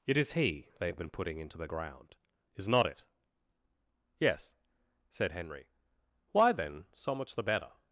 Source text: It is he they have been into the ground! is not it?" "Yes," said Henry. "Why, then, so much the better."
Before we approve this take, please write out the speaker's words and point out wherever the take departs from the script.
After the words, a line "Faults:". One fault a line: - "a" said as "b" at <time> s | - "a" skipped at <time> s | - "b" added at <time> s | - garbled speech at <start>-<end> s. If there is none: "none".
It is he they have been putting into the ground! is not it?" "Yes," said Henry. "Why, then, so much the better."
Faults:
- "putting" added at 1.1 s